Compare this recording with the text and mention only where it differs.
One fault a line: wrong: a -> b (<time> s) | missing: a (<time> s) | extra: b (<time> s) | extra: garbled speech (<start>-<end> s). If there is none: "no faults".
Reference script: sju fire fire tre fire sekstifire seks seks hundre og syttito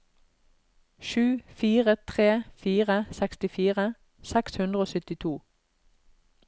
missing: fire (1.9 s)
missing: seks (4.6 s)